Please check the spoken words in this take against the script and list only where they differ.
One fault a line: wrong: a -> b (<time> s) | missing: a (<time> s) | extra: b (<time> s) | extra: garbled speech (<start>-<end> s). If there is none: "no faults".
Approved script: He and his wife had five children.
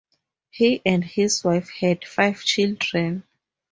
no faults